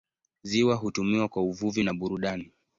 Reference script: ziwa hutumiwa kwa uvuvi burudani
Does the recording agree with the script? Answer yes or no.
no